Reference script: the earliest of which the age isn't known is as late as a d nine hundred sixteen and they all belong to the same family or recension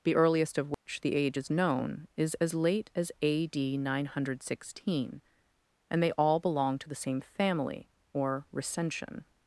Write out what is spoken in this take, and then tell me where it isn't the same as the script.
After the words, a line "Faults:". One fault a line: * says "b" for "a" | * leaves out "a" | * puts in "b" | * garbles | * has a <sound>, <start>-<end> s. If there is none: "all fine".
the earliest of which the age is known is as late as a d nine hundred sixteen and they all belong to the same family or recension
Faults:
* has a dropout, 0.7-0.9 s
* says "is" for "isn't"